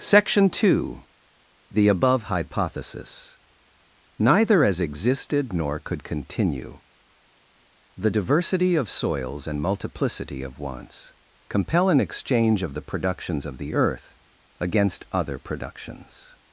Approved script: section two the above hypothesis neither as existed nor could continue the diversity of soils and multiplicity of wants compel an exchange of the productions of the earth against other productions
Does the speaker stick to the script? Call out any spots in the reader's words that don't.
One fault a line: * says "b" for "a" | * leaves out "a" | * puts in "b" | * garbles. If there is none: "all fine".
all fine